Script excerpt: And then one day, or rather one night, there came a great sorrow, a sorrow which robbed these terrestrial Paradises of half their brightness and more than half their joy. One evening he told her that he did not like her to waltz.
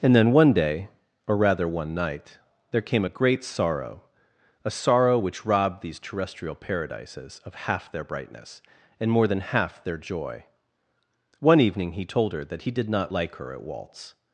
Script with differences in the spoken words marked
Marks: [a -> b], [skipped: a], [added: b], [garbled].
And then one day, or rather one night, there came a great sorrow, a sorrow which robbed these terrestrial Paradises of half their brightness and more than half their joy. One evening he told her that he did not like her [to -> at] waltz.